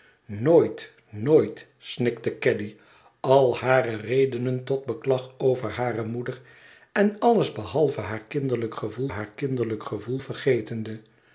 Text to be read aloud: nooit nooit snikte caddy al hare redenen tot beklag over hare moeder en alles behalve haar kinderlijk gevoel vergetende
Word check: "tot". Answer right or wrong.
right